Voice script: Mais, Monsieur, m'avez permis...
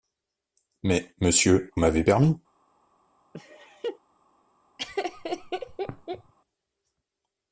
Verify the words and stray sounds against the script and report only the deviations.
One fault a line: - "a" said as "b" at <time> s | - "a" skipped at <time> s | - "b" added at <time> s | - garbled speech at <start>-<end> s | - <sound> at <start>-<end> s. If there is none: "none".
- laugh at 3.3-4.0 s
- laugh at 4.8-6.3 s